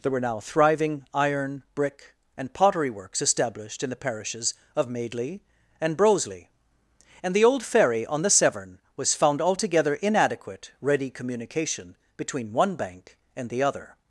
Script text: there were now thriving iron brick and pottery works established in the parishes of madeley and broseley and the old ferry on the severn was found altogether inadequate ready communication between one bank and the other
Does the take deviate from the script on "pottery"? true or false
false